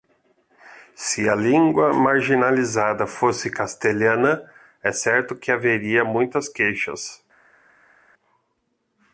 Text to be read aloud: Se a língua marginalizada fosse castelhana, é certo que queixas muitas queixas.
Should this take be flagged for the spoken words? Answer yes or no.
yes